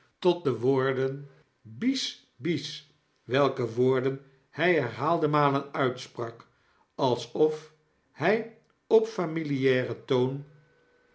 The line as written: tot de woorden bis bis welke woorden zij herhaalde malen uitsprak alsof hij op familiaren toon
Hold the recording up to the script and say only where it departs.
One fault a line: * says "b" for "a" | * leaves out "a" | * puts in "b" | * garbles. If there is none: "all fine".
* says "hij" for "zij"